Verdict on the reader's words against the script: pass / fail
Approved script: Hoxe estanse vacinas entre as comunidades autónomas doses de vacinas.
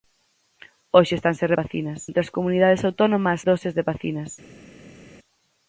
pass